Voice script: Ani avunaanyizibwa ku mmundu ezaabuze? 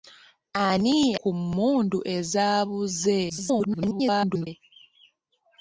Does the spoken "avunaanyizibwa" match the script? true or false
false